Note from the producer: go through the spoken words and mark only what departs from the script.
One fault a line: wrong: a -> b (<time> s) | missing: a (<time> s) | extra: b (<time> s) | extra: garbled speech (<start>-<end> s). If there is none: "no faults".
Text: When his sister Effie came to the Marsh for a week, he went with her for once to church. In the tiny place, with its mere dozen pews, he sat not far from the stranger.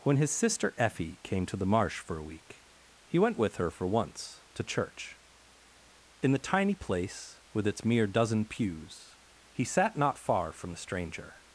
no faults